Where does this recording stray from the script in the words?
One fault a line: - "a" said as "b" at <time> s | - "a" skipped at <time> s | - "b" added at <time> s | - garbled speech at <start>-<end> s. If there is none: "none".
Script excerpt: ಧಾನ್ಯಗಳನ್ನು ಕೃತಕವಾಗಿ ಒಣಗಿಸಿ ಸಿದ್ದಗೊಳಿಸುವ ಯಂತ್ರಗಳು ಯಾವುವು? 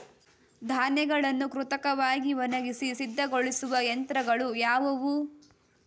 none